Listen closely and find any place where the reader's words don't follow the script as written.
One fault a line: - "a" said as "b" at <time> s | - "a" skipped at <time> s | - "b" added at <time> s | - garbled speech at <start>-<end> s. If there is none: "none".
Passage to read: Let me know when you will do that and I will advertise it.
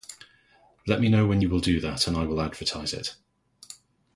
none